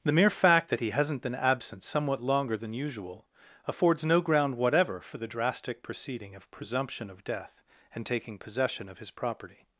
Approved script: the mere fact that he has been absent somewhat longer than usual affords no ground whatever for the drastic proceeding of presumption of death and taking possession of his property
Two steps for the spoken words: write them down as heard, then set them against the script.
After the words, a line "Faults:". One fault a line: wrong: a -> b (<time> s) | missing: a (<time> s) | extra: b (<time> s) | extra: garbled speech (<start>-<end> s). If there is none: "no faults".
the mere fact that he hasn't been absent somewhat longer than usual affords no ground whatever for the drastic proceeding of presumption of death and taking possession of his property
Faults:
wrong: has -> hasn't (0.9 s)